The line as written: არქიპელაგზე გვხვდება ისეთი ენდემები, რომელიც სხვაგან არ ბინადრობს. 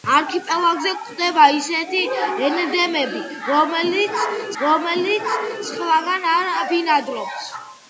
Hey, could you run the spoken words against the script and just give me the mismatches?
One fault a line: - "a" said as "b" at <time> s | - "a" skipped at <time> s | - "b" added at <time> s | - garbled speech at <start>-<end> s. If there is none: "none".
- "რომელიც" added at 4.6 s